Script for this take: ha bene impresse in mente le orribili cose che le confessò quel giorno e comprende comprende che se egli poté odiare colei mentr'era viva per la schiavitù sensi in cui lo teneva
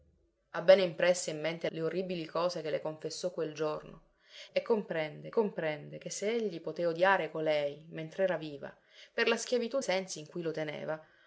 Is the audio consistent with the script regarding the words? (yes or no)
yes